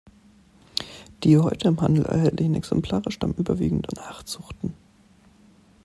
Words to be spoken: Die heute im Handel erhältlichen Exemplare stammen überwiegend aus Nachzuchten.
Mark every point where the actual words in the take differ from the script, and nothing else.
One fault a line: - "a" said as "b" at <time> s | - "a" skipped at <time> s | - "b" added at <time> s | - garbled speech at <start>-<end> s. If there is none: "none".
- "aus" skipped at 3.9 s